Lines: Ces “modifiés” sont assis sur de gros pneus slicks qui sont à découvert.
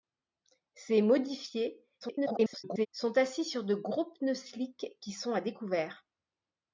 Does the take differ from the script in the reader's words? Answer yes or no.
yes